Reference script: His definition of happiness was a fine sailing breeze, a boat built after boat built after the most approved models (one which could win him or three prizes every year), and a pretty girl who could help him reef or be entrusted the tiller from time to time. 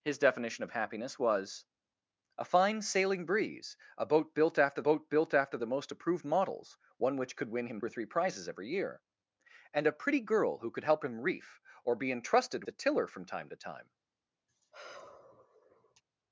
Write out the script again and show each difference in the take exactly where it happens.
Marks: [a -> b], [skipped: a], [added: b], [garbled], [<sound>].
His definition of happiness was a fine sailing breeze, a boat built after boat built after the most approved models (one which could win him or three prizes every year), and a pretty girl who could help him reef or be entrusted the tiller from time to time. [sigh]